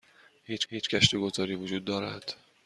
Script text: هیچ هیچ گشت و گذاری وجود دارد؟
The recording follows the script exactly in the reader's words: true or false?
true